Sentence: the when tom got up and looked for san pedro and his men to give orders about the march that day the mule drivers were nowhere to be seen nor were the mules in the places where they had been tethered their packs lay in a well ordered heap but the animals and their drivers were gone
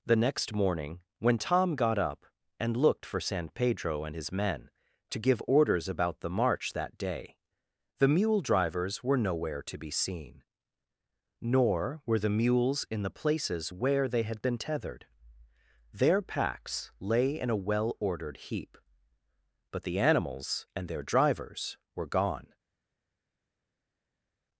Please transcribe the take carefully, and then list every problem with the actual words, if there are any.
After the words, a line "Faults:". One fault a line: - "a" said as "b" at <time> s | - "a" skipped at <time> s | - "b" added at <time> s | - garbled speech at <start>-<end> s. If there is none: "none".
the next morning when tom got up and looked for san pedro and his men to give orders about the march that day the mule drivers were nowhere to be seen nor were the mules in the places where they had been tethered their packs lay in a well ordered heap but the animals and their drivers were gone
Faults:
- "next morning" added at 0.1 s